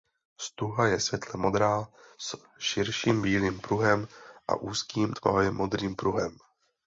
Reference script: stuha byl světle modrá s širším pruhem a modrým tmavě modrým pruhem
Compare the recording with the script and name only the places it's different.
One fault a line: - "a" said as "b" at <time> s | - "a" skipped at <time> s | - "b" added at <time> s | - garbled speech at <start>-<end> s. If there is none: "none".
- "byl" said as "je" at 0.9 s
- "bílým" added at 3.2 s
- "modrým" said as "úzkým" at 4.5 s